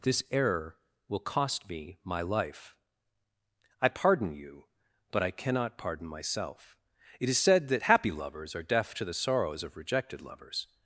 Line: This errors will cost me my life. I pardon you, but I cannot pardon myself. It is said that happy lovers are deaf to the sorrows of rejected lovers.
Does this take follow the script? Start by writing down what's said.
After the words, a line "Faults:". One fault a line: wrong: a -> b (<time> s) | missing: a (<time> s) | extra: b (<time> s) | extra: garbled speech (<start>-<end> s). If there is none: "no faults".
This error will cost me my life. I pardon you, but I cannot pardon myself. It is said that happy lovers are deaf to the sorrows of rejected lovers.
Faults:
wrong: errors -> error (0.3 s)